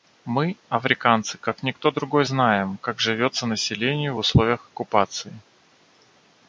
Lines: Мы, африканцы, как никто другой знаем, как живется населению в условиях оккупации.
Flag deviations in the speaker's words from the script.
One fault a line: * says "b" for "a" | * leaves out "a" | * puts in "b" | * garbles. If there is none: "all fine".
all fine